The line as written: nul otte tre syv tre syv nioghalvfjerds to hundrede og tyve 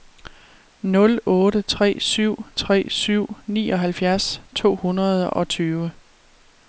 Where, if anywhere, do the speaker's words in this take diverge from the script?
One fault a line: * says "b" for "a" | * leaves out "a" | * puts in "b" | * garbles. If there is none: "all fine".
all fine